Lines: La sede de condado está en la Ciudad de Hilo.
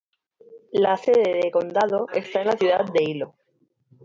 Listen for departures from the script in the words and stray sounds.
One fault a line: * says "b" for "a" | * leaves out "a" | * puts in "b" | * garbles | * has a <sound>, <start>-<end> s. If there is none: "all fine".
all fine